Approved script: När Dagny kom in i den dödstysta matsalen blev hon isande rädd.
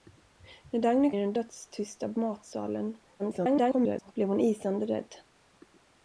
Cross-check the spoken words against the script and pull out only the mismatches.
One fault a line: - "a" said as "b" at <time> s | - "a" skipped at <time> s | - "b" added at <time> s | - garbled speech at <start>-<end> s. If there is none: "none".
- "kom in" skipped at 1.1 s
- garbled speech at 3.2-4.1 s